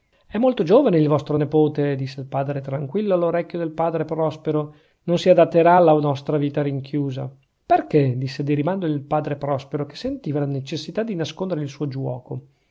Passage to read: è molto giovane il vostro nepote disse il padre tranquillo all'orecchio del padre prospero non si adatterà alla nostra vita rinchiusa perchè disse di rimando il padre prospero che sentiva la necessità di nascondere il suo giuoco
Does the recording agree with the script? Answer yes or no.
yes